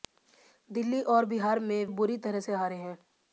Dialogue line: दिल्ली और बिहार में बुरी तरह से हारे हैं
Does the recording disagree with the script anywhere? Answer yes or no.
no